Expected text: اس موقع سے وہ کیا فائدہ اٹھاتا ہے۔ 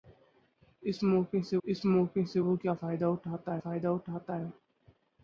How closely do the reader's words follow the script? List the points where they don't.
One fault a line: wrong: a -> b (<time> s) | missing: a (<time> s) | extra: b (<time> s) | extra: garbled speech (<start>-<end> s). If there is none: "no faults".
extra: اس موقع سے (1.6 s)
extra: فائدہ اٹھاتا (3.6 s)